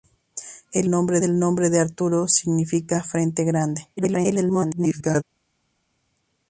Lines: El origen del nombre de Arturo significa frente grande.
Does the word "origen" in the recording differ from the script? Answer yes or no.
yes